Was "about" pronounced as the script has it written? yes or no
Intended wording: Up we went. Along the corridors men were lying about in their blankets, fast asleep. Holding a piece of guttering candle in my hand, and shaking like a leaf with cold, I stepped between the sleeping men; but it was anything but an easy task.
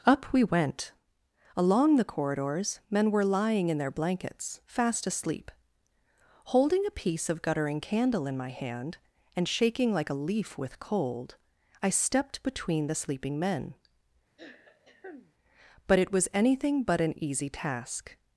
no